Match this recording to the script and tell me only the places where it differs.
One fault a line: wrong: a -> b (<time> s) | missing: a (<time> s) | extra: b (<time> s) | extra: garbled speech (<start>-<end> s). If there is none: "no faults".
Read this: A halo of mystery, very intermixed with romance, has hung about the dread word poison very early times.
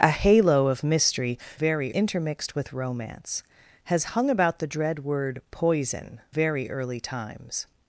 no faults